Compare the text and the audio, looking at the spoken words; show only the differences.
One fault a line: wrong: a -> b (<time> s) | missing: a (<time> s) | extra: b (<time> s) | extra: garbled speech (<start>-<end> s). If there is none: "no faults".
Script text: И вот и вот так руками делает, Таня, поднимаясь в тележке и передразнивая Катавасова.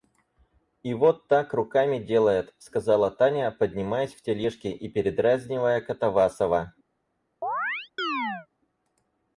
missing: и вот (1.3 s)
extra: сказала (2.6 s)